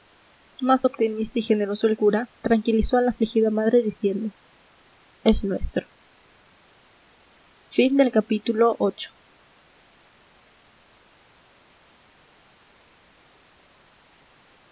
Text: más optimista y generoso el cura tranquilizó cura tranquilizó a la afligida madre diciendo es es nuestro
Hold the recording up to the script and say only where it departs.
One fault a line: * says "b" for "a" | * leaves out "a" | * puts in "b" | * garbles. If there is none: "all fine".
* leaves out "cura tranquilizó"
* leaves out "es"